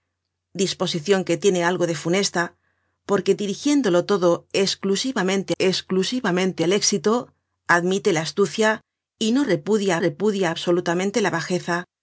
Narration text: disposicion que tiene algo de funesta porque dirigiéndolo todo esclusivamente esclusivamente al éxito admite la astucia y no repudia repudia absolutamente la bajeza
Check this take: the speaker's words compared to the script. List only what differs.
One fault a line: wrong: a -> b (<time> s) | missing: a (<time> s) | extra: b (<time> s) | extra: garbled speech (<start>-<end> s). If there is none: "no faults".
no faults